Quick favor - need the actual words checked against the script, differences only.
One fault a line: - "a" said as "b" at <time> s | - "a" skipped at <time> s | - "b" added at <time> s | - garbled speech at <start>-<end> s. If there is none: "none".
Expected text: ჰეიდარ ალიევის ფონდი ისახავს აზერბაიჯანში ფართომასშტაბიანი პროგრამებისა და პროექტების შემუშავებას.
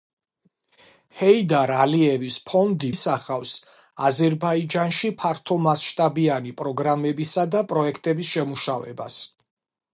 none